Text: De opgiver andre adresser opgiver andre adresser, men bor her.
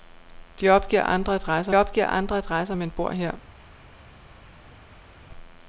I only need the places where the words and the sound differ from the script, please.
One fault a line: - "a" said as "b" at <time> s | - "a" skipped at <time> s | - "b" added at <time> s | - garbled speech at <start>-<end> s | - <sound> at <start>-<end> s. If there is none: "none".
none